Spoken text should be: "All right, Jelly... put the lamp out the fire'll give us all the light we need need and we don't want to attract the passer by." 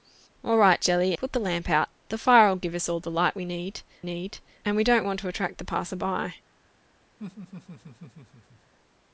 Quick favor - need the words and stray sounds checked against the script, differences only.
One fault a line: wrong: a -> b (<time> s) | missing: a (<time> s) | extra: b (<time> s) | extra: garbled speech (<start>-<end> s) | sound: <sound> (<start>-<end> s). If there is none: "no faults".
sound: laugh (7.2-8.7 s)